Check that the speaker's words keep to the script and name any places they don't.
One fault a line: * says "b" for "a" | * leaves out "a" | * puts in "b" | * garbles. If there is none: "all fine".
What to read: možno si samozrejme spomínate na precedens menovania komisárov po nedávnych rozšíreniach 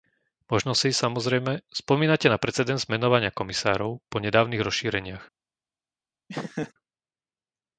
all fine